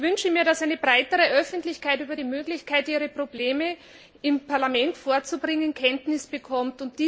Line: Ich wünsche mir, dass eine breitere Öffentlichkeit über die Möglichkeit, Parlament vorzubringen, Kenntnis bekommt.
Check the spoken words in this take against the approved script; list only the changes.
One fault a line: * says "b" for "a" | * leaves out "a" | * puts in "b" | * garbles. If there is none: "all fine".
* puts in "ihre Probleme im"